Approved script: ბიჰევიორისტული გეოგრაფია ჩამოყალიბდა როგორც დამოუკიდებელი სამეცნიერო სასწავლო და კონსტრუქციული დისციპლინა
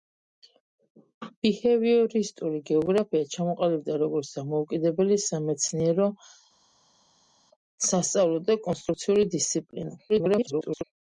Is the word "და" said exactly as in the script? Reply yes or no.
yes